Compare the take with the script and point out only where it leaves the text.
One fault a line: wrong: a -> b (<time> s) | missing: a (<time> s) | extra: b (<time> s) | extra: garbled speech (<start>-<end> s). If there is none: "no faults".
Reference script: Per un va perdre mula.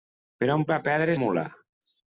no faults